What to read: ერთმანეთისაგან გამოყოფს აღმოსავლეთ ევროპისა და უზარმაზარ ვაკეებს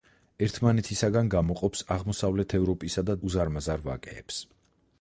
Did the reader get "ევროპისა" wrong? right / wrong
right